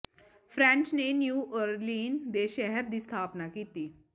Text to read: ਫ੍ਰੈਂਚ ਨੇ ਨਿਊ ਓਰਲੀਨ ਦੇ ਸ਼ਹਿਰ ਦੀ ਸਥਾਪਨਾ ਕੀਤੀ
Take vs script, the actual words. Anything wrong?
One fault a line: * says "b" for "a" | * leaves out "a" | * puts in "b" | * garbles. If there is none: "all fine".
all fine